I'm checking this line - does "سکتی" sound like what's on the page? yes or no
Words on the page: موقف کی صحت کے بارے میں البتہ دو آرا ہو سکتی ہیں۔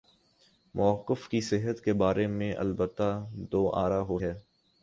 no